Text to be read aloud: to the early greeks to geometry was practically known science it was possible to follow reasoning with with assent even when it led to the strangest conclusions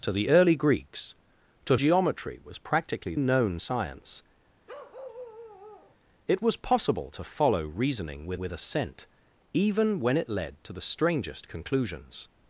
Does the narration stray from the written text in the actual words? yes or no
no